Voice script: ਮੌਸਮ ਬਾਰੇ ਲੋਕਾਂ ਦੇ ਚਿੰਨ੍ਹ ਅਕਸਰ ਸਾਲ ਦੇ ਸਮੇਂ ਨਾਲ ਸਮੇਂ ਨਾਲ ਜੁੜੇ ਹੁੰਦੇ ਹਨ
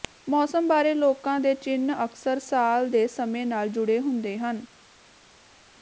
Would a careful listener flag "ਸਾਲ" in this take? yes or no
no